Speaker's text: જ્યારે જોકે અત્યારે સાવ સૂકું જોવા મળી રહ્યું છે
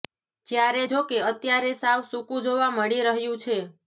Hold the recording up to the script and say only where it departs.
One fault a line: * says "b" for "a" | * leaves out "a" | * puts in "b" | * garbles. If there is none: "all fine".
all fine